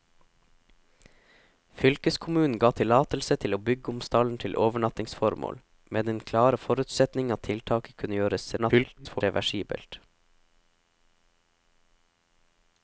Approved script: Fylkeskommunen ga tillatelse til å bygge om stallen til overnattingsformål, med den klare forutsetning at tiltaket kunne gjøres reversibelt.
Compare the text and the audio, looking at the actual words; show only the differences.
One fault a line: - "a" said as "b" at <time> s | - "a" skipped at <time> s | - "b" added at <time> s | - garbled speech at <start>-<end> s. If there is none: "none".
- garbled speech at 8.6-9.2 s